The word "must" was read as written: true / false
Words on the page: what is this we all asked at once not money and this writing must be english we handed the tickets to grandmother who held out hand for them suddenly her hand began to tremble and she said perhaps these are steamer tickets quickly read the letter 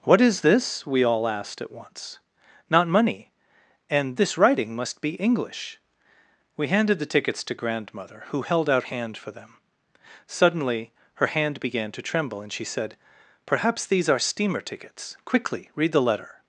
true